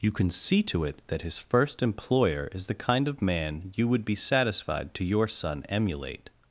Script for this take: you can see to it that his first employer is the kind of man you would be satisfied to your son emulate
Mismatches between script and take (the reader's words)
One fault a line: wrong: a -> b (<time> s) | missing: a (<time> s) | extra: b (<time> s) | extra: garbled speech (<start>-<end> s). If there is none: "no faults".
no faults